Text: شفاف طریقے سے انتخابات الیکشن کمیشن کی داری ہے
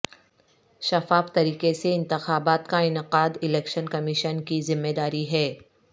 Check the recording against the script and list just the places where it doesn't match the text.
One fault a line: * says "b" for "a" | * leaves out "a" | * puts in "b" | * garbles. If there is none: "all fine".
* puts in "کا انعقاد"
* puts in "ذمہ"